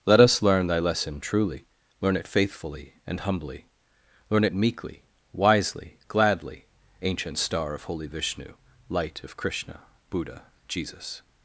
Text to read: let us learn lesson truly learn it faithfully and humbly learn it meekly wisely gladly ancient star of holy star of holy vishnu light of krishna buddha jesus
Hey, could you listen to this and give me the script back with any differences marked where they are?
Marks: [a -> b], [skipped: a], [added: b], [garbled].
let us learn [added: thy] lesson truly learn it faithfully and humbly learn it meekly wisely gladly ancient star of holy [skipped: star of holy] vishnu light of krishna buddha jesus